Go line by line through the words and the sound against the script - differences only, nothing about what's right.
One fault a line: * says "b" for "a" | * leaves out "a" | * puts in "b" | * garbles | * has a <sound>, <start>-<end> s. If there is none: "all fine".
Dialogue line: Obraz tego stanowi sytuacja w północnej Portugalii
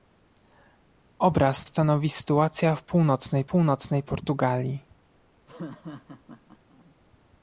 * leaves out "tego"
* puts in "północnej"
* has a laugh, 5.5-7.0 s